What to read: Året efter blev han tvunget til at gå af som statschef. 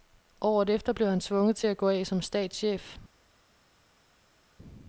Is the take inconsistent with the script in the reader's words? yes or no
no